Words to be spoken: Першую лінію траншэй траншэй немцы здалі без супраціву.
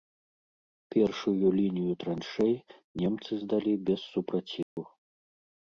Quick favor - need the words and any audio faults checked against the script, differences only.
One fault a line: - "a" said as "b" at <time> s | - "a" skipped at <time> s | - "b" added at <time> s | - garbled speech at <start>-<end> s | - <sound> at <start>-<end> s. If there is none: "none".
- "траншэй" skipped at 2.5 s
- dropout at 4.6-4.8 s